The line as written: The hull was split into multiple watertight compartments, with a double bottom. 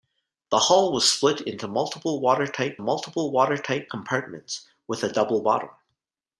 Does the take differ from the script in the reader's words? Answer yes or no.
yes